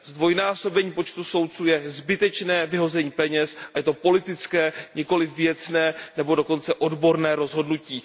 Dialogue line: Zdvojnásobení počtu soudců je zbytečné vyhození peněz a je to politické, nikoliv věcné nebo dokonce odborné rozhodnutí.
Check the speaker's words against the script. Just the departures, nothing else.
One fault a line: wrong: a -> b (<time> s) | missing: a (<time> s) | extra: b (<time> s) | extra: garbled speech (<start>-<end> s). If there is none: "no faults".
no faults